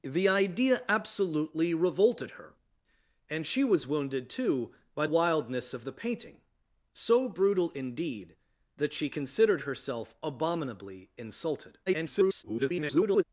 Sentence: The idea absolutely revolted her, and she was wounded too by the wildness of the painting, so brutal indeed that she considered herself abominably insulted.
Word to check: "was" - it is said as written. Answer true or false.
true